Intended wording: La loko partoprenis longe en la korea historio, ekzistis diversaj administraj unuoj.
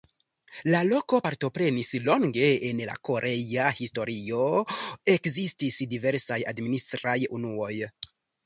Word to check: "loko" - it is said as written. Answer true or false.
true